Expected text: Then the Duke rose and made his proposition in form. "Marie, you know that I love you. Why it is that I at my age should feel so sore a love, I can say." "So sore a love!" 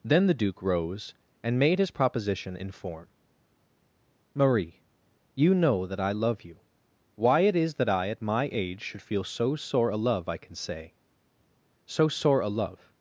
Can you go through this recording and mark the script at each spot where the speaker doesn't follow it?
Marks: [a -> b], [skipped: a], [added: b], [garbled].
Then the Duke rose and made his proposition in form. "Marie, you know that I love you. Why it is that I at my age should feel so sore a love, I can say." "So sore a love!"